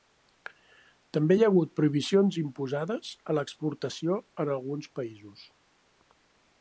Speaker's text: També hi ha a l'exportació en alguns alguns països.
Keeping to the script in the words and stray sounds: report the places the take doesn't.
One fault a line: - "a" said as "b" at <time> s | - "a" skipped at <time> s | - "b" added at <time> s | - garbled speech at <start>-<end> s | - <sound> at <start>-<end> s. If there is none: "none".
- "hagut prohibicions imposades" added at 1.5 s
- "alguns" skipped at 4.9 s